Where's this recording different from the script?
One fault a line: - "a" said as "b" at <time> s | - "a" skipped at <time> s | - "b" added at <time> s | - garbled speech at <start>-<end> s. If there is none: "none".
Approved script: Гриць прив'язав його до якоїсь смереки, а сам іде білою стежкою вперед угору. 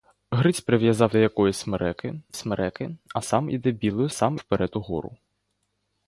- "його" skipped at 1.1 s
- "смереки" added at 2.4 s
- "стежкою" said as "сам" at 4.1 s